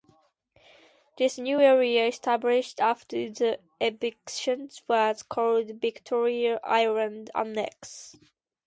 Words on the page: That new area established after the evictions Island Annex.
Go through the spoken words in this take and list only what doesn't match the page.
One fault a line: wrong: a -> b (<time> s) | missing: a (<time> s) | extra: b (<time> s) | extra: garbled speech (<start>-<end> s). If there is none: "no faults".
wrong: That -> This (1.2 s)
extra: was called Victoria (4.9 s)